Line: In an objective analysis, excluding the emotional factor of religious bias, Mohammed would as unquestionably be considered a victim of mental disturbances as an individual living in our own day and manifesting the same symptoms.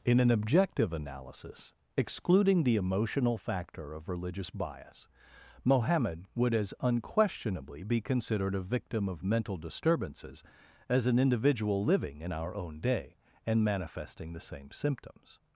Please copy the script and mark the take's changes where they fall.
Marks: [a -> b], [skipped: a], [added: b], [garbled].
In an objective analysis, excluding the emotional factor of religious bias, Mohammed would as unquestionably be considered a victim of mental disturbances as an individual living in our own day and manifesting the same symptoms.